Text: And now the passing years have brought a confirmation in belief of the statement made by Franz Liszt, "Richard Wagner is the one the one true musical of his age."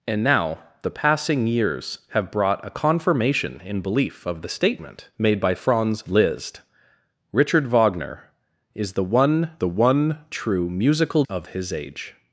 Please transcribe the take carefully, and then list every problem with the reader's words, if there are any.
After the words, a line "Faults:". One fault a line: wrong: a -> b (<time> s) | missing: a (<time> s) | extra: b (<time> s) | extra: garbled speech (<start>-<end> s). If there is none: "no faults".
And now the passing years have brought a confirmation in belief of the statement made by Franz Liszt, "Richard Wagner is the one the one true musical of his age."
Faults:
no faults